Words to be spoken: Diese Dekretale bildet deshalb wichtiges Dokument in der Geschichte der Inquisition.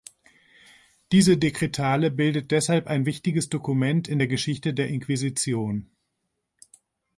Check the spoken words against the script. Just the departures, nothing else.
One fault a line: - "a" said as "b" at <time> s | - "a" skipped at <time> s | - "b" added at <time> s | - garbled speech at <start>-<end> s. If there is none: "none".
- "ein" added at 2.9 s